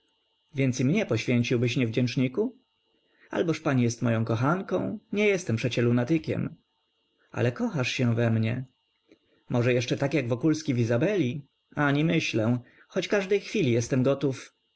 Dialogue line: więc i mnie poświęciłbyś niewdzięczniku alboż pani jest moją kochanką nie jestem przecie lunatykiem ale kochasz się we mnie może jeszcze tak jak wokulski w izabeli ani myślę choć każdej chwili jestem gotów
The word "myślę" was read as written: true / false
true